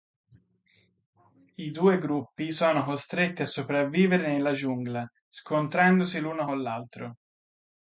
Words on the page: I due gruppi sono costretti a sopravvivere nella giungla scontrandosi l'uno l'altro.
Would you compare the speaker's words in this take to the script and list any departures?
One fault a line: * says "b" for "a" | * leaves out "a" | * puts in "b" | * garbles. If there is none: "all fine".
* puts in "con"